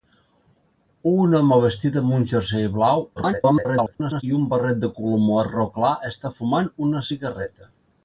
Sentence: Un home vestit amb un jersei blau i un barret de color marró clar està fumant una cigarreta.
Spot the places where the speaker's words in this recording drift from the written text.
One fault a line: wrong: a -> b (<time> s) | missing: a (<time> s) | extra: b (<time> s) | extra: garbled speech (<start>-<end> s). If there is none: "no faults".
extra: garbled speech (3.2-4.2 s)